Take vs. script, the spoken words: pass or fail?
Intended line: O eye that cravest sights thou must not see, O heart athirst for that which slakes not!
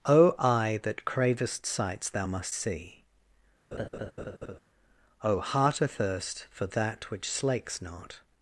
fail